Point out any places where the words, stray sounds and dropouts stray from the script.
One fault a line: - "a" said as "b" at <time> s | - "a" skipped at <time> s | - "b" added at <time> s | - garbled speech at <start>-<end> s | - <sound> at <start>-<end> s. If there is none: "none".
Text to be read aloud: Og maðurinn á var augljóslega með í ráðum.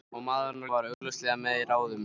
- dropout at 0.9-1.0 s